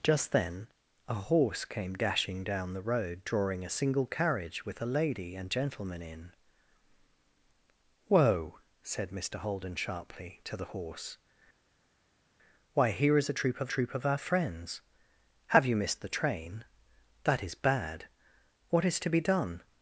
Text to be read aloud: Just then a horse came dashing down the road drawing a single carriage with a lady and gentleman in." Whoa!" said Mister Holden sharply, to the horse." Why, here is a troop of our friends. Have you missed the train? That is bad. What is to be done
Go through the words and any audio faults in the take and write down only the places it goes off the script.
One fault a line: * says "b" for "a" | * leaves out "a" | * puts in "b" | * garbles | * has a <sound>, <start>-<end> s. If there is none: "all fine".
* puts in "troop of"